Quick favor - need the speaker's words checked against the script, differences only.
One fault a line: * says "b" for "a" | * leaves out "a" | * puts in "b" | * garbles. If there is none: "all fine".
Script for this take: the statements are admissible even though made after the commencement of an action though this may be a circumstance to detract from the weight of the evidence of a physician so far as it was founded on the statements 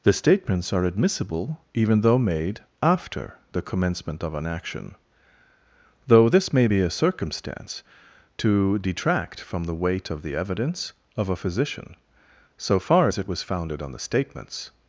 all fine